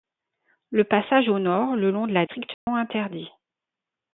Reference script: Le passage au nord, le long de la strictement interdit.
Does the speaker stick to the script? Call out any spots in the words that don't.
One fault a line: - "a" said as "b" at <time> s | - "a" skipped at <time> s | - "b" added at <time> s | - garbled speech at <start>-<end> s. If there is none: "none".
none